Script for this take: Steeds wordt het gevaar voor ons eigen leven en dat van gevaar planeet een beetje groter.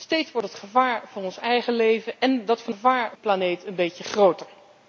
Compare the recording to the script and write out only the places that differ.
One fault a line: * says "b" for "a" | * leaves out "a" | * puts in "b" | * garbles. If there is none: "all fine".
all fine